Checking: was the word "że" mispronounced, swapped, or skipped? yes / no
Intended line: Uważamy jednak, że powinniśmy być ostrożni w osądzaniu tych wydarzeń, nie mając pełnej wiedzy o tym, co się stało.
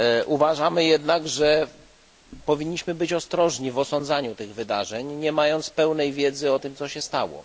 no